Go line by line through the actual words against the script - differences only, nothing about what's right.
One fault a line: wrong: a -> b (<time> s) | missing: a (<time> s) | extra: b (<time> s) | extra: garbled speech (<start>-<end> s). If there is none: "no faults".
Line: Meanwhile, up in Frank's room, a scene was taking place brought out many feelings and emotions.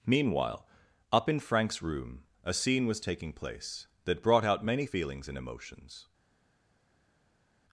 extra: that (4.0 s)